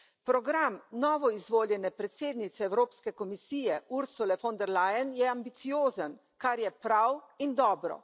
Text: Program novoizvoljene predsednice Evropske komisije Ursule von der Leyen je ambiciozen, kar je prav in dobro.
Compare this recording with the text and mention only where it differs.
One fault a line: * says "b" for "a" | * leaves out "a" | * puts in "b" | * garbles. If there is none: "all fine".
all fine